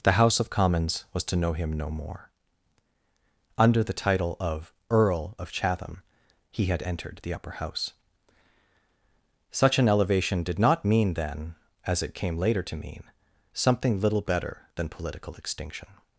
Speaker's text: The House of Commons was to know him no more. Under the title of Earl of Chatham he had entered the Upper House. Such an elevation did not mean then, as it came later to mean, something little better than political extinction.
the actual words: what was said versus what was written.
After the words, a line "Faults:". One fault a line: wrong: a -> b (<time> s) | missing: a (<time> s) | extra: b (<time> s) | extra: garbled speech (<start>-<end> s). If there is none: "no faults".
The House of Commons was to know him no more. Under the title of Earl of Chatham he had entered the Upper House. Such an elevation did not mean then, as it came later to mean, something little better than political extinction.
Faults:
no faults